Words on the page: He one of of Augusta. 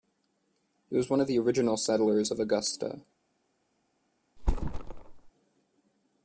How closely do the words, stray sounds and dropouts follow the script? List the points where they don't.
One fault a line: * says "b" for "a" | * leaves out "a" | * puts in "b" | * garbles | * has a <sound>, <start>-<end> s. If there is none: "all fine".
* puts in "was"
* puts in "the original settlers"
* has a thud, 4.4-5.3 s